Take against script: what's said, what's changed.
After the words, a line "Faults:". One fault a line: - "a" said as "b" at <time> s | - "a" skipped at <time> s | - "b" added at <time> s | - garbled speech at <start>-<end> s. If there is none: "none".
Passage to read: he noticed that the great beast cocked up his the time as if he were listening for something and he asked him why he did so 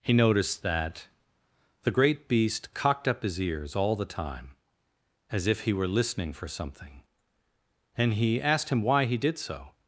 he noticed that the great beast cocked up his ears all the time as if he were listening for something and he asked him why he did so
Faults:
- "ears all" added at 3.4 s